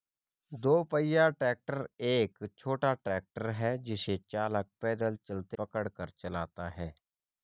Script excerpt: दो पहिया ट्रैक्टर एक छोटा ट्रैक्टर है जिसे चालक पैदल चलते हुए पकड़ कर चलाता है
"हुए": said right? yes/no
no